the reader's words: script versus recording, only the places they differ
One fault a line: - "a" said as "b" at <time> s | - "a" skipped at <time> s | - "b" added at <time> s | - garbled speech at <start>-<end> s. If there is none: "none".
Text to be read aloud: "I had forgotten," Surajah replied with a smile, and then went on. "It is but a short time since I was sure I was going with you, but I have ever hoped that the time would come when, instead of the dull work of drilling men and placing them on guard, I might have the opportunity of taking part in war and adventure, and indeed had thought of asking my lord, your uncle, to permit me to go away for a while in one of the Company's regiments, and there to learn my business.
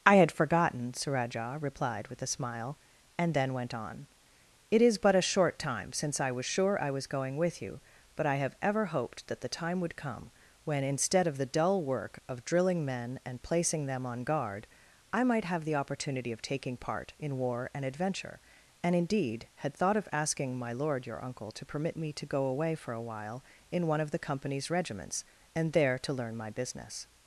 none